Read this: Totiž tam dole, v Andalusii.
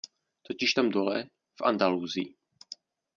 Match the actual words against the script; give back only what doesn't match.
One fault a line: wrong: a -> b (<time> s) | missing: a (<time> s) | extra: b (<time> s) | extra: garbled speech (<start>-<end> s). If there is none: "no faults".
no faults